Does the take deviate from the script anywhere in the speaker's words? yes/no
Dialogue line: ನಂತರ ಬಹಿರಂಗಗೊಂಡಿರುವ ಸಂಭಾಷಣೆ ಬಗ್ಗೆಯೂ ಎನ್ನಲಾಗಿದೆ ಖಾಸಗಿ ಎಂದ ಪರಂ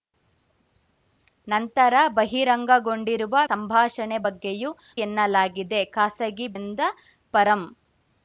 no